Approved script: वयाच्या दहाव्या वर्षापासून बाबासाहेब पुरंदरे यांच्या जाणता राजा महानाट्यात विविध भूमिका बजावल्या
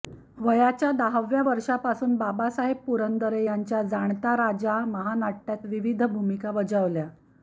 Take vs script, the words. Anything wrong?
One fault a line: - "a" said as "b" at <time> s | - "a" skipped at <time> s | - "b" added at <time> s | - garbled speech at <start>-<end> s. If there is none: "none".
none